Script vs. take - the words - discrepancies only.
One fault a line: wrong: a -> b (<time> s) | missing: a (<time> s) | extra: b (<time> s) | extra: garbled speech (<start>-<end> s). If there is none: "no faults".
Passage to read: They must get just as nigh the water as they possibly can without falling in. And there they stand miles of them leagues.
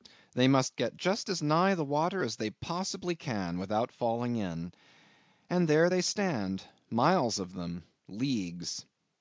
no faults